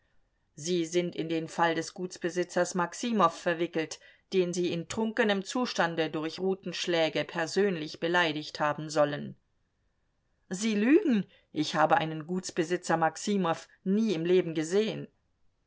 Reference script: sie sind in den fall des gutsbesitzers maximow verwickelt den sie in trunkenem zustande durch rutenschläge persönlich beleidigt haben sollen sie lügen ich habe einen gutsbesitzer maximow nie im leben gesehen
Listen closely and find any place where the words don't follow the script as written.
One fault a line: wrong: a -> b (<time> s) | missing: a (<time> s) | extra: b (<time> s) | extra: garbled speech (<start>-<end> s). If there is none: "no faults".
no faults